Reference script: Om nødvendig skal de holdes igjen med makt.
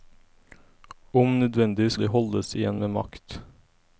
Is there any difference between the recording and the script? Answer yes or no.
yes